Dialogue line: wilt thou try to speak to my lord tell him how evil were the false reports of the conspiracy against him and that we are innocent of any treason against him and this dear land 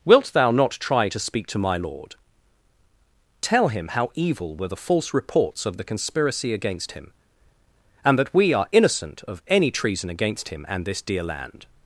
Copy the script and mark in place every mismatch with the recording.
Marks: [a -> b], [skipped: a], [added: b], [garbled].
wilt thou [added: not] try to speak to my lord tell him how evil were the false reports of the conspiracy against him and that we are innocent of any treason against him and this dear land